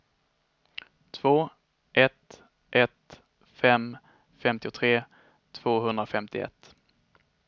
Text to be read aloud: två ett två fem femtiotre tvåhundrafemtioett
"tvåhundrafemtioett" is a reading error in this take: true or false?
false